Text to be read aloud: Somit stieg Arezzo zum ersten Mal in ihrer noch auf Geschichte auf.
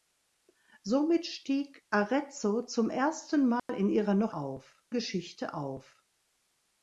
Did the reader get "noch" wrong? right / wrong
right